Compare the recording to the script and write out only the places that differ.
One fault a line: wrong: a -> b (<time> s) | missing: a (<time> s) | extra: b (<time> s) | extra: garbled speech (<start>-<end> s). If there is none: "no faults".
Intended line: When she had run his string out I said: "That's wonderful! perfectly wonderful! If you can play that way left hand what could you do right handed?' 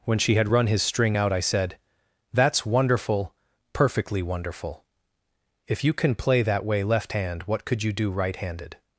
no faults